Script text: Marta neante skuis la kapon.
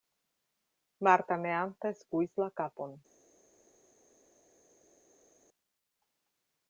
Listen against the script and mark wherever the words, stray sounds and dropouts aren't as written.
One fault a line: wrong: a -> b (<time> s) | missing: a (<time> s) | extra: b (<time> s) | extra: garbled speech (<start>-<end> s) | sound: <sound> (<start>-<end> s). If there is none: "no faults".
no faults